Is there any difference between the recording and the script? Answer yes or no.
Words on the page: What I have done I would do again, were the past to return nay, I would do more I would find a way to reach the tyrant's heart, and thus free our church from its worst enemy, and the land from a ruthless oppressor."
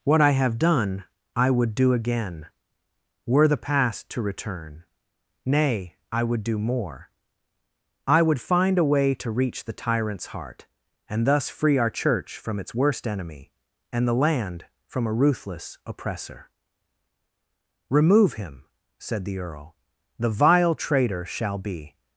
yes